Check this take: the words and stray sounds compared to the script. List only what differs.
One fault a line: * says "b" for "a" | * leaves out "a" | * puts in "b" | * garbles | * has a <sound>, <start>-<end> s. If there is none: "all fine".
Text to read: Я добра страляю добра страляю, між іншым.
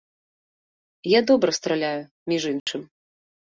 * leaves out "добра страляю"
* has a dropout, 2.6-2.7 s